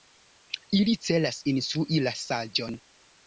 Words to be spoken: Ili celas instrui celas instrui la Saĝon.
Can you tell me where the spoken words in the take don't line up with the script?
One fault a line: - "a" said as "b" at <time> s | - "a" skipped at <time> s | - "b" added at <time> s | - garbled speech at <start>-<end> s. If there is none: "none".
- "celas instrui" skipped at 2.0 s